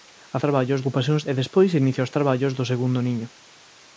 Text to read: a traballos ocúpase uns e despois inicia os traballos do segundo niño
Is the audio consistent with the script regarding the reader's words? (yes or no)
yes